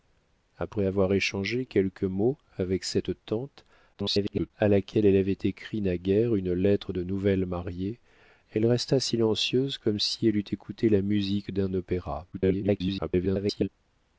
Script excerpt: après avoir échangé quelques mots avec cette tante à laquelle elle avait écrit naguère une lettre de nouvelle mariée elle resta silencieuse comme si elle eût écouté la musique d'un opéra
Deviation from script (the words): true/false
true